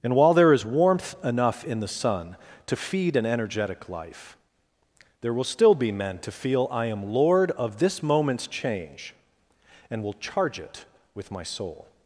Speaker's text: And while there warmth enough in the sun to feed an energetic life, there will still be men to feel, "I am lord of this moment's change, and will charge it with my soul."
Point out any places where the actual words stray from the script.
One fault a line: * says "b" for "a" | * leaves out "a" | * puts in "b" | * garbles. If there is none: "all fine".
* puts in "is"